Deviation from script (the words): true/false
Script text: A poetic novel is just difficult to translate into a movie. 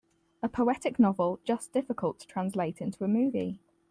true